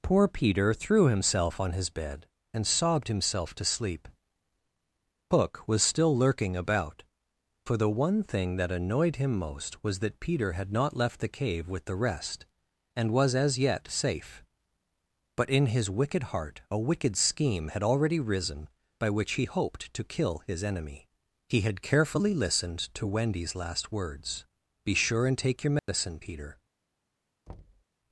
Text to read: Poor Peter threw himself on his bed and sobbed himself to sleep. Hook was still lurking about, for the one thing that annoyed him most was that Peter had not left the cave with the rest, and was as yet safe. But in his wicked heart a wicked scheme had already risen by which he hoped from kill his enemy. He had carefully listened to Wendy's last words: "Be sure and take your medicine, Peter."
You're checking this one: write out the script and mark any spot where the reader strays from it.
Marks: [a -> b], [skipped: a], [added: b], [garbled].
Poor Peter threw himself on his bed and sobbed himself to sleep. Hook was still lurking about, for the one thing that annoyed him most was that Peter had not left the cave with the rest, and was as yet safe. But in his wicked heart a wicked scheme had already risen by which he hoped [from -> to] kill his enemy. He had carefully listened to Wendy's last words: "Be sure and take your medicine, Peter."